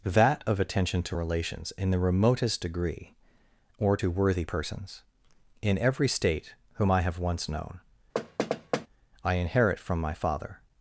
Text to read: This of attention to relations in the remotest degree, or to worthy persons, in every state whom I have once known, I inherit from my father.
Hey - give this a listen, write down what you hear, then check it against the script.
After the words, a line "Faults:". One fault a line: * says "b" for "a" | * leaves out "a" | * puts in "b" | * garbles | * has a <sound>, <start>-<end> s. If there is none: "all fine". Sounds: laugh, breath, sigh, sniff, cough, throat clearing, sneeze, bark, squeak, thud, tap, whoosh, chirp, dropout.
That of attention to relations in the remotest degree, or to worthy persons, in every state whom I have once known, I inherit from my father.
Faults:
* says "That" for "This"
* has a thud, 8.1-8.9 s